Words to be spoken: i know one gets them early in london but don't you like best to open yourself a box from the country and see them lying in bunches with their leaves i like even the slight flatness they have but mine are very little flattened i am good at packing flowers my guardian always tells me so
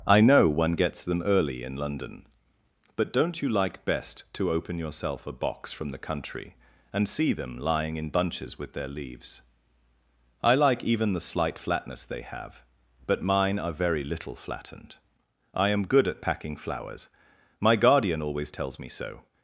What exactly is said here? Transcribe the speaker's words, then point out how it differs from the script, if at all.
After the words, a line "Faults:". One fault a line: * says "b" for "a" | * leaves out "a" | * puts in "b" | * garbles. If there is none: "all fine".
i know one gets them early in london but don't you like best to open yourself a box from the country and see them lying in bunches with their leaves i like even the slight flatness they have but mine are very little flattened i am good at packing flowers my guardian always tells me so
Faults:
all fine